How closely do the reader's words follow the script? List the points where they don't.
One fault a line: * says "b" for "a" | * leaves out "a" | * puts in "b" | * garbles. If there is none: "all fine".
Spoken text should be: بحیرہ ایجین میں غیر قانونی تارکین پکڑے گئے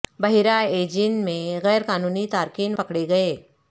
all fine